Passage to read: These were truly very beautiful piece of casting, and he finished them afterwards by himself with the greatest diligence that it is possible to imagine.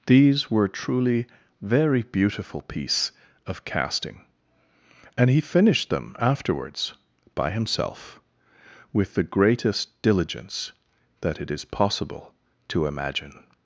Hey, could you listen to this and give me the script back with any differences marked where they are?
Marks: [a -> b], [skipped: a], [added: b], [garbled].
These were truly very beautiful piece of casting, and he finished them afterwards by himself with the greatest diligence that it is possible to imagine.